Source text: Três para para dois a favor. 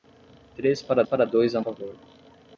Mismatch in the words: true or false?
false